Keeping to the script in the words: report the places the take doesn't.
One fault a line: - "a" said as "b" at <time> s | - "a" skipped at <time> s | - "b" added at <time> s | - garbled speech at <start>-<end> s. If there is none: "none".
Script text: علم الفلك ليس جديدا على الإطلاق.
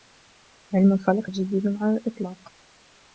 - "ليس" skipped at 1.3 s